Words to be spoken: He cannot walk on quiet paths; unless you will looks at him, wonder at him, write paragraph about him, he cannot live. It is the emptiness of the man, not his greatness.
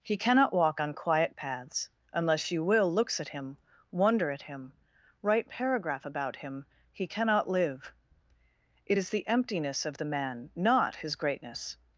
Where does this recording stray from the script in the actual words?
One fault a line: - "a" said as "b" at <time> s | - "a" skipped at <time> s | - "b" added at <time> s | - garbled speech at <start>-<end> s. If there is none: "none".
none